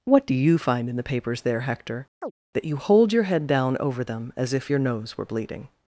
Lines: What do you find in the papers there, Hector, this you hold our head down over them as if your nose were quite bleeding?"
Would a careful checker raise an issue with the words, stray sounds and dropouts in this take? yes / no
yes